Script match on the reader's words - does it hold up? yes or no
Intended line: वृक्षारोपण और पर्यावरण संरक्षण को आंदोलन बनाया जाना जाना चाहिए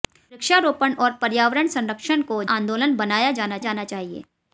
yes